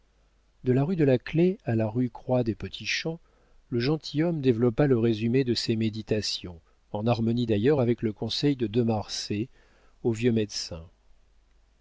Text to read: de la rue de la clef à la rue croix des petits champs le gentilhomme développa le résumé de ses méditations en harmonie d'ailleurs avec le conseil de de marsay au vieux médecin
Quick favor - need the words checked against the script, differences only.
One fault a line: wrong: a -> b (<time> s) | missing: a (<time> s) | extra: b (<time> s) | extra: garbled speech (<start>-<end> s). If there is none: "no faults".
no faults